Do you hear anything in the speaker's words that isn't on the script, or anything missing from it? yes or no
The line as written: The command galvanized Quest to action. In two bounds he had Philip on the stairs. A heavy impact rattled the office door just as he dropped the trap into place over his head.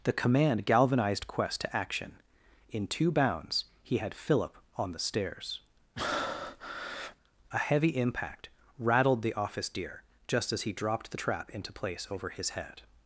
yes